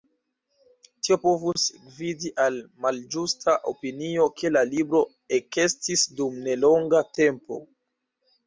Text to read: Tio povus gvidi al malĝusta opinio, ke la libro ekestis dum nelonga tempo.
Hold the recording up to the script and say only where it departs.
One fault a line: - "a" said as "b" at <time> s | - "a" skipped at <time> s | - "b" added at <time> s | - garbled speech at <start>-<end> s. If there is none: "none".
none